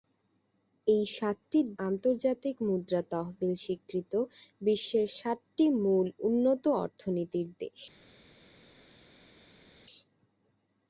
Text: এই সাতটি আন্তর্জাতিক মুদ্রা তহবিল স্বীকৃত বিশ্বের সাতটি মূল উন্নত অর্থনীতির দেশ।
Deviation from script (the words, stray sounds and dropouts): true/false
false